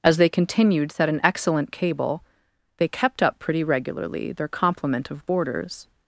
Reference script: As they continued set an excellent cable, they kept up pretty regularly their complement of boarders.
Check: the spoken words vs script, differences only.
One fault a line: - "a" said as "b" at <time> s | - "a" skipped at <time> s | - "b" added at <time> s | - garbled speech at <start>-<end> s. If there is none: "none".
none